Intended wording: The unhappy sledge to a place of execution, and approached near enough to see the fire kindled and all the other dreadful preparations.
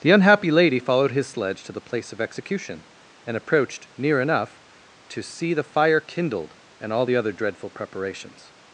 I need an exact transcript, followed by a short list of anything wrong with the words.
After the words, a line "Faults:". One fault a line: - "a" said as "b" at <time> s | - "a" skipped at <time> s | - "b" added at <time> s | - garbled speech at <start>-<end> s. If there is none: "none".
The unhappy lady followed his sledge to the place of execution, and approached near enough to see the fire kindled and all the other dreadful preparations.
Faults:
- "lady followed his" added at 0.5 s
- "a" said as "the" at 1.7 s